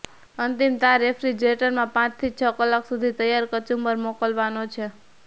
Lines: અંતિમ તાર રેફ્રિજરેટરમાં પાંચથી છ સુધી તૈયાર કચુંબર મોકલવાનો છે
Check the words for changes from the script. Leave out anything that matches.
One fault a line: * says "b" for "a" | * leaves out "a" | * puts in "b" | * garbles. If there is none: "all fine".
* puts in "કલાક"